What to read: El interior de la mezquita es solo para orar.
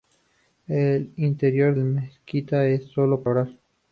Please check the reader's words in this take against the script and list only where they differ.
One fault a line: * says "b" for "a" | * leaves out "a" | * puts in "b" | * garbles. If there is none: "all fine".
* leaves out "de"
* leaves out "para"